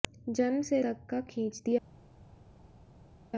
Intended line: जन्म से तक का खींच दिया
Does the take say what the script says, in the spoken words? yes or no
yes